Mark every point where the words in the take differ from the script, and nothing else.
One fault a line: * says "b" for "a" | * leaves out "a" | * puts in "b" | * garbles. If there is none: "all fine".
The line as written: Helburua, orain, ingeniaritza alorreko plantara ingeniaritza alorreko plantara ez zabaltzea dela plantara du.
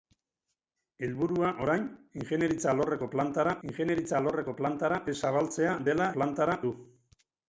all fine